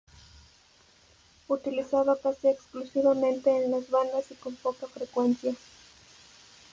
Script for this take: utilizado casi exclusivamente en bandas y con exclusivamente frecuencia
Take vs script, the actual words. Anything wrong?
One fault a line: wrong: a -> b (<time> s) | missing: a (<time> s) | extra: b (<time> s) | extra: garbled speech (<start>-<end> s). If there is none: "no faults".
extra: las (3.7 s)
wrong: exclusivamente -> poca (4.5 s)